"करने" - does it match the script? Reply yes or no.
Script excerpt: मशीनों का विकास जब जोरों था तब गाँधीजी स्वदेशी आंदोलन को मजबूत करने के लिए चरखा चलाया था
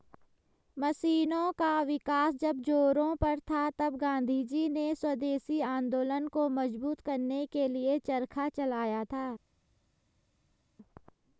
yes